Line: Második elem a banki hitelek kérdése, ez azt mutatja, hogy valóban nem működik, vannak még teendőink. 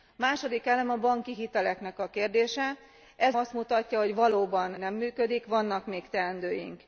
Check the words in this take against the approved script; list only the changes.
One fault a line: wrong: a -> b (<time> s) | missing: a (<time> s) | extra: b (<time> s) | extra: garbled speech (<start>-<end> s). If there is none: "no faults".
no faults